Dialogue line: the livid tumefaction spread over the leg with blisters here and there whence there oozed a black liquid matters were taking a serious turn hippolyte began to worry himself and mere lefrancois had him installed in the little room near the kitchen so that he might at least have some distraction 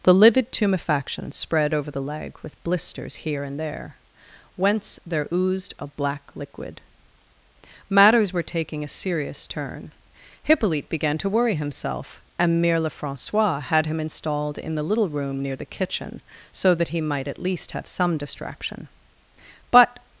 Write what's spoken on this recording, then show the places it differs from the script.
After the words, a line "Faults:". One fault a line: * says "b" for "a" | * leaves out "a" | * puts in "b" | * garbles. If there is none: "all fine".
the livid tumefaction spread over the leg with blisters here and there whence there oozed a black liquid matters were taking a serious turn hippolyte began to worry himself and mere lefrancois had him installed in the little room near the kitchen so that he might at least have some distraction but
Faults:
* puts in "but"